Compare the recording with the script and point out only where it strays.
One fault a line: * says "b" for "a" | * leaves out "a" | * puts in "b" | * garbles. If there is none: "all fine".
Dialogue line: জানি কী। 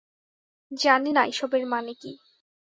* puts in "না এসবের মানে"